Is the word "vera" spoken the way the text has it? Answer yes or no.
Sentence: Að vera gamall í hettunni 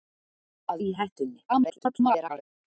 no